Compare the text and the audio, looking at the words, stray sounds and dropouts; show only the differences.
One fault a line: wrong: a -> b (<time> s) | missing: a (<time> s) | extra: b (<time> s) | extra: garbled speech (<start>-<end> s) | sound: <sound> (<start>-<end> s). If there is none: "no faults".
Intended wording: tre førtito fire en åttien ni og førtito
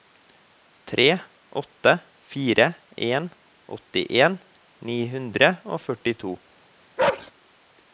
wrong: førtito -> åtte (1.6 s)
extra: hundre (5.1 s)
sound: bark (7.0-7.3 s)